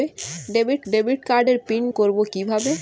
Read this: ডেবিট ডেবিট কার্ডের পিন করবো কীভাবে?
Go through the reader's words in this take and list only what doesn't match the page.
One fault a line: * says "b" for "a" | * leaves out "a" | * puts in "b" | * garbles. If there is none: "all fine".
all fine